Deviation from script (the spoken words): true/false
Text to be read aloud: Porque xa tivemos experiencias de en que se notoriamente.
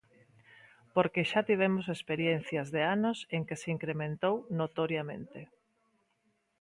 true